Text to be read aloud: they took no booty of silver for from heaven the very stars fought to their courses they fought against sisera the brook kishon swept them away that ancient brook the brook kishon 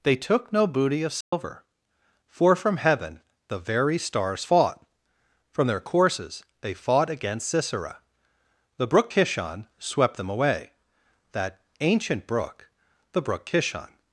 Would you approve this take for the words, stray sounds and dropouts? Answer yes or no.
no